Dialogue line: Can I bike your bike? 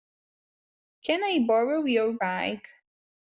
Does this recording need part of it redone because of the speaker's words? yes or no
yes